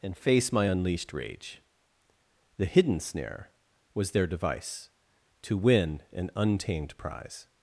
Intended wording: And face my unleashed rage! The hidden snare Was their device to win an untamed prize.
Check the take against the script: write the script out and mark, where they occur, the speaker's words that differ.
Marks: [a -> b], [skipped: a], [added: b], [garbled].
And face my unleashed rage! The hidden snare Was their device to win an untamed prize.